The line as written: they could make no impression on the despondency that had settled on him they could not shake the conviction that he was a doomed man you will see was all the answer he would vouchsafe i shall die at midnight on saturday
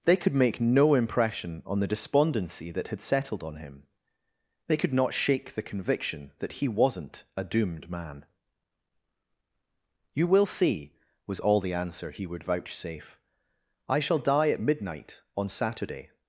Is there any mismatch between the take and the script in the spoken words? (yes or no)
yes